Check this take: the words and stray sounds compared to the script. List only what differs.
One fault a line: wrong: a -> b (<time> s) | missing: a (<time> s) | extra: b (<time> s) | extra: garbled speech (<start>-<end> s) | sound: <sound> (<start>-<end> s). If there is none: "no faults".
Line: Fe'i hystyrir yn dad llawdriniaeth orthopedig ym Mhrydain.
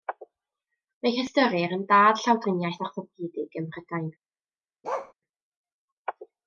sound: bark (4.8-5.1 s)